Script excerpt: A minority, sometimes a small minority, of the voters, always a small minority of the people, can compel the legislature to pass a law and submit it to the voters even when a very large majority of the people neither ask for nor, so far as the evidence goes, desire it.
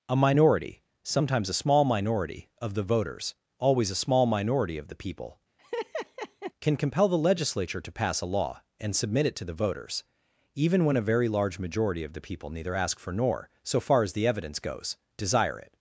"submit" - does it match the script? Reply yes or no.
yes